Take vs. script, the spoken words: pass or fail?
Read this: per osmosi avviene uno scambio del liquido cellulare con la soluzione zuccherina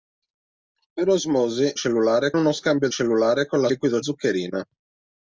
fail